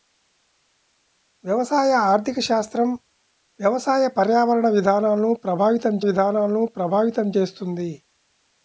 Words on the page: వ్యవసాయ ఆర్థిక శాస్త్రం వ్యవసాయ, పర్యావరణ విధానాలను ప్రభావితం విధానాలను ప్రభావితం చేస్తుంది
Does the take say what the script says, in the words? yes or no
yes